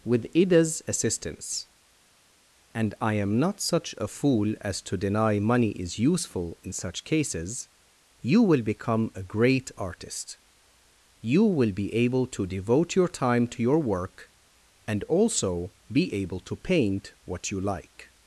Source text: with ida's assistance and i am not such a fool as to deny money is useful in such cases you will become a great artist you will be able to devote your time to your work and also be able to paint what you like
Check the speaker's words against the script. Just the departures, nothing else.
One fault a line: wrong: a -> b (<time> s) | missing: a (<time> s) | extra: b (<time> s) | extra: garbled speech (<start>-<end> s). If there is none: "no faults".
no faults